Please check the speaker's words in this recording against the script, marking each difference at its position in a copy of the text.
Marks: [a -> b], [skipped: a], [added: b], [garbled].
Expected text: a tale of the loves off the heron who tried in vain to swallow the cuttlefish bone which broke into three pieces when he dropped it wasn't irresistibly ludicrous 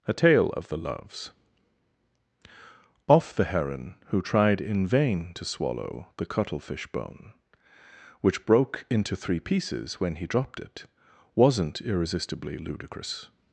a tale of the loves off the heron who tried in vain to swallow the cuttlefish bone which broke into three pieces when he dropped it wasn't irresistibly ludicrous